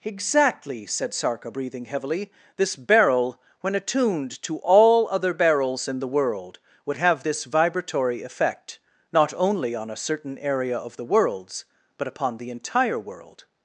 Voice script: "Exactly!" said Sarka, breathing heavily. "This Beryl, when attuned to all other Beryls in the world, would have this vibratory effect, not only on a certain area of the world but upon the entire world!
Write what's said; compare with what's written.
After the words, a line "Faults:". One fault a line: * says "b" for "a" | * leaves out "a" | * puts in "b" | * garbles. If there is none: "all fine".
"Exactly!" said Sarka, breathing heavily. "This Beryl, when attuned to all other Beryls in the world, would have this vibratory effect, not only on a certain area of the worlds but upon the entire world!
Faults:
* says "worlds" for "world"